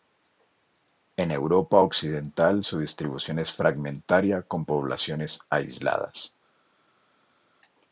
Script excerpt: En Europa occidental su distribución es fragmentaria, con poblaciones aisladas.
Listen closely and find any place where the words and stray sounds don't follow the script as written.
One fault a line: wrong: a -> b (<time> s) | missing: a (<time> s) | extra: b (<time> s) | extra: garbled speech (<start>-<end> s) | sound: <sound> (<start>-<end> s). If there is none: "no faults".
no faults